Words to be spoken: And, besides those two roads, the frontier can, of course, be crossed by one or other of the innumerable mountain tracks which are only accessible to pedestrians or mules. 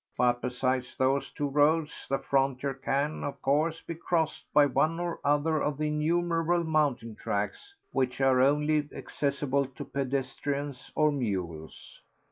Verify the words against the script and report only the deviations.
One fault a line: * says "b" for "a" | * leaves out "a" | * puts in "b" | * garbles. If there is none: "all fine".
* says "But" for "And"